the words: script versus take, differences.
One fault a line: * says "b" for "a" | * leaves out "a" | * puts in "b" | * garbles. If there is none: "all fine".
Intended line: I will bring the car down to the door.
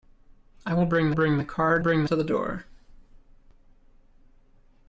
* puts in "bring"
* says "bring" for "down"